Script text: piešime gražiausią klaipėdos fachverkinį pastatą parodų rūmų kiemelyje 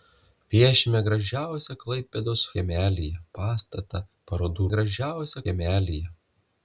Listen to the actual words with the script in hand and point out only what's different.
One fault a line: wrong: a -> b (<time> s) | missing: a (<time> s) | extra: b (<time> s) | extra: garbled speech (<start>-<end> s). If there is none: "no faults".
wrong: fachverkinį -> kiemelyje (2.6 s)
wrong: rūmų -> gražiausią (4.7 s)